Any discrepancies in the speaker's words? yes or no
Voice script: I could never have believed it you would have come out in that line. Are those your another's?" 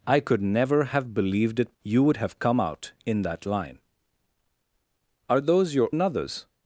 no